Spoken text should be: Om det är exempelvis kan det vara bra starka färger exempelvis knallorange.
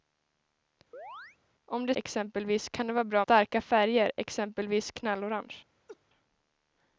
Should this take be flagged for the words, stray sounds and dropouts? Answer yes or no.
yes